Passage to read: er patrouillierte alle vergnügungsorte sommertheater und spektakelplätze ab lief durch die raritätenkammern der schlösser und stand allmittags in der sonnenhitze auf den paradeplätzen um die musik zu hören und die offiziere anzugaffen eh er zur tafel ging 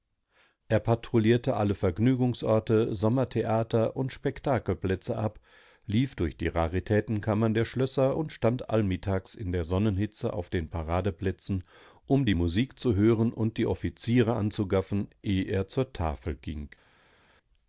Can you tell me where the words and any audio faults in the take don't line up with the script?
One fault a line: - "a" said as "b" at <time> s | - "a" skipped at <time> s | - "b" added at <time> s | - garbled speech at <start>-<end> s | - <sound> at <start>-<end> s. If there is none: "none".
none